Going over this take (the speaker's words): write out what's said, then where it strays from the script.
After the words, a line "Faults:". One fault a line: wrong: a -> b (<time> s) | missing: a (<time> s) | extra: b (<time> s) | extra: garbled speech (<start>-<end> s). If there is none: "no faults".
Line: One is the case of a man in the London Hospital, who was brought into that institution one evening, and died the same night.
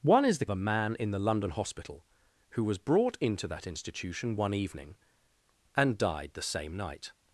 One is the a man in the London Hospital, who was brought into that institution one evening, and died the same night.
Faults:
missing: case of (0.5 s)